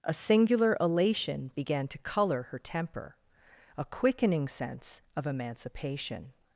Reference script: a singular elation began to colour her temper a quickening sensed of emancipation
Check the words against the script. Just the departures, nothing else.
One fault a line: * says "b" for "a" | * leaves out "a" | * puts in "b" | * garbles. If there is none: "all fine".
* says "sense" for "sensed"